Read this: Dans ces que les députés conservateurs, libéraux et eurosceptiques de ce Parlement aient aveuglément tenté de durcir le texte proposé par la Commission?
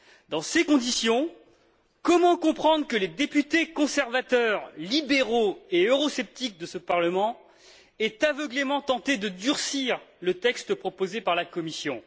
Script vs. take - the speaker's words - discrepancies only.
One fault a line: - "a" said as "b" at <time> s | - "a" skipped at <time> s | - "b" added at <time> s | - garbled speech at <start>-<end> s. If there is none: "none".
- "conditions comment comprendre" added at 0.6 s